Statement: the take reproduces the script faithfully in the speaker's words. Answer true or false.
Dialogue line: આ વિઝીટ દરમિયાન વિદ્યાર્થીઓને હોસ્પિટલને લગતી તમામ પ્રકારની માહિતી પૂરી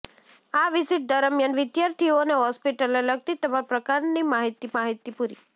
false